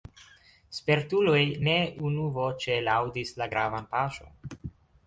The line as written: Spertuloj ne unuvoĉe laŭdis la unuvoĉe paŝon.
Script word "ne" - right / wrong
right